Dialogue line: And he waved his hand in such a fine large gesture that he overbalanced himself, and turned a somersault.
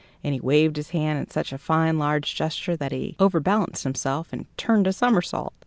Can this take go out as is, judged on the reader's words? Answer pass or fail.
pass